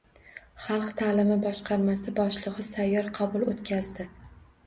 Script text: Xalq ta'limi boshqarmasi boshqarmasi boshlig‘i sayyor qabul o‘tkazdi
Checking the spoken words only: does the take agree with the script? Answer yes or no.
no